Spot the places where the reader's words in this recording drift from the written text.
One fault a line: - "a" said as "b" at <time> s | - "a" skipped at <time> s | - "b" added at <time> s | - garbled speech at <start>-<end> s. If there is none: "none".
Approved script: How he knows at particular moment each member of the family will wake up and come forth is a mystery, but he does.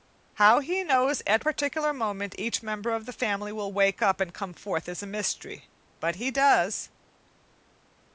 none